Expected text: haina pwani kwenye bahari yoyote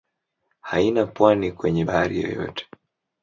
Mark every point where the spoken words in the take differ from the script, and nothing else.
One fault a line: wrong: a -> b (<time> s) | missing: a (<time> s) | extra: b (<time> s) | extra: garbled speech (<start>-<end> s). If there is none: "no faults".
no faults